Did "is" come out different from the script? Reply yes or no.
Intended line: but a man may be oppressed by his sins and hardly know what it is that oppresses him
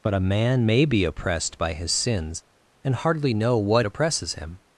yes